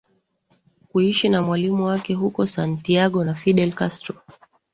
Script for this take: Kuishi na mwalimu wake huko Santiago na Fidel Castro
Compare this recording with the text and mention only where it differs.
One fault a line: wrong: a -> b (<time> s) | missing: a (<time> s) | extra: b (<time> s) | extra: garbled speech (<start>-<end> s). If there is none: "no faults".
no faults